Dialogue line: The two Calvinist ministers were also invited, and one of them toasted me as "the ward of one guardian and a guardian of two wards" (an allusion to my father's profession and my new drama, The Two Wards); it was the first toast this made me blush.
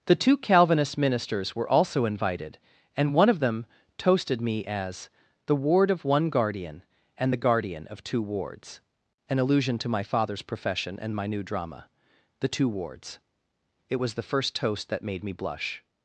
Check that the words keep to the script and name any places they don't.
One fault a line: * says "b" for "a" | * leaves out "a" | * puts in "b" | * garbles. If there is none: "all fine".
* says "the" for "a"
* says "that" for "this"